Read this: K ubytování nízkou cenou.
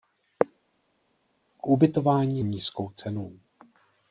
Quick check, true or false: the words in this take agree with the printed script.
true